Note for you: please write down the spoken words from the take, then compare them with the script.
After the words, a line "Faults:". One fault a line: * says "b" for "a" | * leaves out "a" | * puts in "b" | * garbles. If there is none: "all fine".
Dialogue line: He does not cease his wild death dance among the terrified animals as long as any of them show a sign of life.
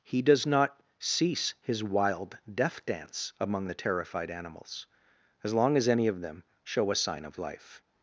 He does not cease his wild death dance among the terrified animals as long as any of them show a sign of life.
Faults:
all fine